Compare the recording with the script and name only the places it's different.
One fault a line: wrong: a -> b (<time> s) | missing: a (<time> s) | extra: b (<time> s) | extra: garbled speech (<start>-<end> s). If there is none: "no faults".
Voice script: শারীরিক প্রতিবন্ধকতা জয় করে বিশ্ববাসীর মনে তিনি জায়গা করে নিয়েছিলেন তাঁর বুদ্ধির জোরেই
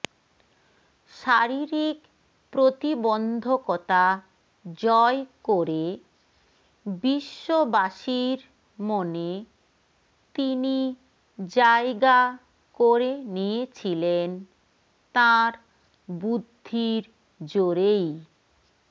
no faults